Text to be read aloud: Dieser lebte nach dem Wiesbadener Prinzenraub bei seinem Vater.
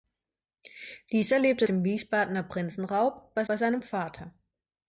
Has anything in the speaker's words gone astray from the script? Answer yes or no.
yes